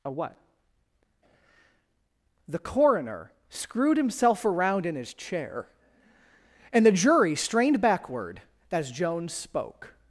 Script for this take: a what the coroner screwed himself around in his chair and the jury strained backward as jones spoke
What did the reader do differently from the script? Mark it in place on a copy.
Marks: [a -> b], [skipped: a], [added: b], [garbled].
a what the coroner screwed himself around in his chair and the jury strained backward as jones spoke